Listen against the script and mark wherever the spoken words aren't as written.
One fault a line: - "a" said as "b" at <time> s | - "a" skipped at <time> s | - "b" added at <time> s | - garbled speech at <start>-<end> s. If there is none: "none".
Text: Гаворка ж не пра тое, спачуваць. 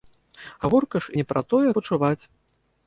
none